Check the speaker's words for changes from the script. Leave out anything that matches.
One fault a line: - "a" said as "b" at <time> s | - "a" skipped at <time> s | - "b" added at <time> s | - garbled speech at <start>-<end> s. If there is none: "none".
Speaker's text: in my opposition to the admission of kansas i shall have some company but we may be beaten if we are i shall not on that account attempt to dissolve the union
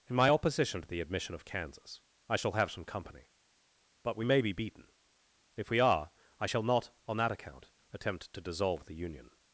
none